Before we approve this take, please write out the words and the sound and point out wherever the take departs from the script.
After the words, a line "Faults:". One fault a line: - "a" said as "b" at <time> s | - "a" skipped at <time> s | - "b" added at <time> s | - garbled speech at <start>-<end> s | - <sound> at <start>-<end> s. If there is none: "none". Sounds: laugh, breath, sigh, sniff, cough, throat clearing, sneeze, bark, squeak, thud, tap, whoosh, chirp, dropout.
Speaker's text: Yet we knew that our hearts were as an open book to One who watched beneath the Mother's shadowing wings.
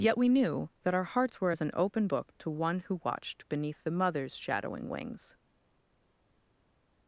Yet we knew that our hearts were as an open book to One who watched beneath the Mother's shadowing wings.
Faults:
none